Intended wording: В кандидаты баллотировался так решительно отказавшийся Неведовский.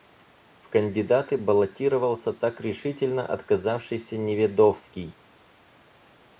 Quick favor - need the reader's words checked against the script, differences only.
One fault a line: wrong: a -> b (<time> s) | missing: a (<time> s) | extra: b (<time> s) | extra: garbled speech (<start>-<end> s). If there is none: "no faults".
no faults